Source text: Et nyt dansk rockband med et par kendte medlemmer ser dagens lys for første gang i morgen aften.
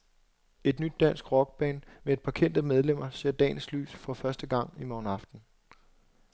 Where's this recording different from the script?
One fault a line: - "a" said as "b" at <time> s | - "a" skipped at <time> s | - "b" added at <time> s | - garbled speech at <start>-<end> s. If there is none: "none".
none